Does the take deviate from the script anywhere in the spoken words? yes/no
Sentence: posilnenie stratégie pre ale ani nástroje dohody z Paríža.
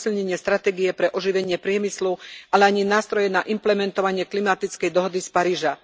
yes